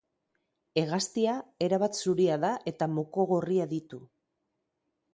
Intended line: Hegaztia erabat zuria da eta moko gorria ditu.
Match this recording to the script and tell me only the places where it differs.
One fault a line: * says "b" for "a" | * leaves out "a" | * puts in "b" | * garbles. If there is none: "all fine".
all fine